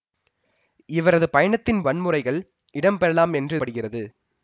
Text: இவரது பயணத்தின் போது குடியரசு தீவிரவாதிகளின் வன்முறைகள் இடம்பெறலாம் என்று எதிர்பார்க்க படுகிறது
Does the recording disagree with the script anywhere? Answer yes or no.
yes